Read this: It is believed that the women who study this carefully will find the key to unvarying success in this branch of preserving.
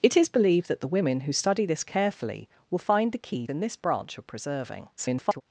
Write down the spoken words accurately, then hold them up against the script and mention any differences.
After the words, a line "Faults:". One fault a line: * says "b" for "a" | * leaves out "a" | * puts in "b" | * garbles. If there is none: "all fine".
It is believed that the women who study this carefully will find the key in this branch of preserving. [garbled]
Faults:
* leaves out "to unvarying success"
* garbles